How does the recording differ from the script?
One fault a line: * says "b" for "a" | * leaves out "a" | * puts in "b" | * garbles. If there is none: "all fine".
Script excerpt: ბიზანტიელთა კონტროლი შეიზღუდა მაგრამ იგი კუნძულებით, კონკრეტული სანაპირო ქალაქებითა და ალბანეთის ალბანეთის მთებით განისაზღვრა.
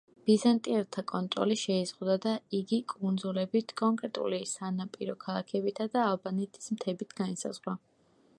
* says "და" for "მაგრამ"
* leaves out "ალბანეთის"